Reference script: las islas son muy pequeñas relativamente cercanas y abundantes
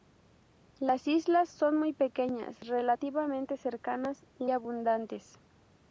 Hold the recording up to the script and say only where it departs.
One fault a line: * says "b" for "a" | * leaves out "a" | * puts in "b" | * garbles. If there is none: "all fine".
all fine